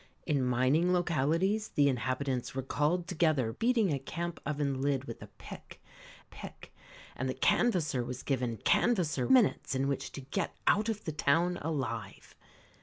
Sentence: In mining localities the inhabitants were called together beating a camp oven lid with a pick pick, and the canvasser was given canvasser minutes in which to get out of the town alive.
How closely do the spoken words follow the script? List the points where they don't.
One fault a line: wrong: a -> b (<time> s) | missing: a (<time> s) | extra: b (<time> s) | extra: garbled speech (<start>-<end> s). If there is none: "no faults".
no faults